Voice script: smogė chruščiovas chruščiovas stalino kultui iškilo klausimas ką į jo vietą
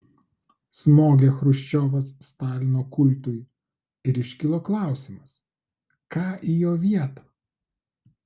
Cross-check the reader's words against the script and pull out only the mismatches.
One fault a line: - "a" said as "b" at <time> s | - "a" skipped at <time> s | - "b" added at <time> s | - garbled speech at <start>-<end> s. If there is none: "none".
- "chruščiovas" skipped at 2.1 s
- "ir" added at 4.1 s